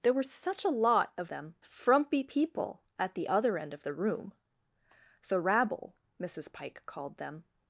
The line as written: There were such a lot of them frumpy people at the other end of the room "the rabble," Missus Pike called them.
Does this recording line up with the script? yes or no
yes